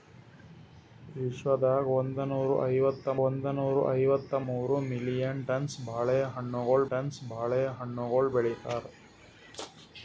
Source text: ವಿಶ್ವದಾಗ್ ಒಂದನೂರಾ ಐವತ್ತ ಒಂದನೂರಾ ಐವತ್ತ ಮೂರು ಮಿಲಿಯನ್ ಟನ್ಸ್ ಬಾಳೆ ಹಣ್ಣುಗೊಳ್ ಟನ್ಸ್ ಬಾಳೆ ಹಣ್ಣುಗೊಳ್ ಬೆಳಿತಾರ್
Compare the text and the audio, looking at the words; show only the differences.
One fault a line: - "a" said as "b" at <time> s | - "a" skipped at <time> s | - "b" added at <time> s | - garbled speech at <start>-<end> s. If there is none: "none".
none